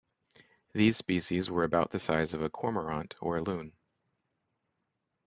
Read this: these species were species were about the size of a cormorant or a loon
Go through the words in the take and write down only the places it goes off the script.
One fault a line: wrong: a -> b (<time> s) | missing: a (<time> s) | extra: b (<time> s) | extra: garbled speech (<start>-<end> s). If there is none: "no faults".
missing: species were (1.6 s)